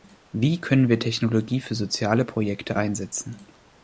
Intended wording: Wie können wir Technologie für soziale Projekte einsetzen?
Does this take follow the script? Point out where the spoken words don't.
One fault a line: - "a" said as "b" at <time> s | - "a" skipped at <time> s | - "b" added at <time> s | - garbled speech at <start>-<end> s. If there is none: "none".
none